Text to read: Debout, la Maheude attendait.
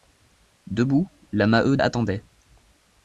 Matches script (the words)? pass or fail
pass